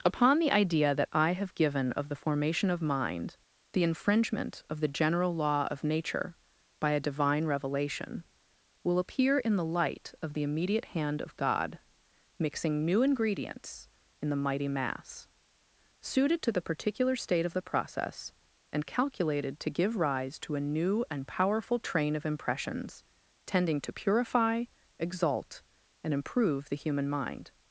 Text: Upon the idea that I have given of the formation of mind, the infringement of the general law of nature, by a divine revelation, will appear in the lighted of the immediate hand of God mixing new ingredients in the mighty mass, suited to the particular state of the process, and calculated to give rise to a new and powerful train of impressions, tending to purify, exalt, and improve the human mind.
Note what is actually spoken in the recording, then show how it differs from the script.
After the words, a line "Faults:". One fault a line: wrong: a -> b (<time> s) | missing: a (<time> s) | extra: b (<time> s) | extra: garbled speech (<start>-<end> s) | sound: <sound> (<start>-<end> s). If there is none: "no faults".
Upon the idea that I have given of the formation of mind, the infringement of the general law of nature, by a divine revelation, will appear in the light of the immediate hand of God mixing new ingredients in the mighty mass, suited to the particular state of the process, and calculated to give rise to a new and powerful train of impressions, tending to purify, exalt, and improve the human mind.
Faults:
wrong: lighted -> light (9.7 s)